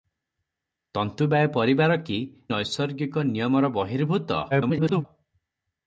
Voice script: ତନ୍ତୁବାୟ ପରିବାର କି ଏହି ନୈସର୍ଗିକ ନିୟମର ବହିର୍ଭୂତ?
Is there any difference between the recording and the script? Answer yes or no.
yes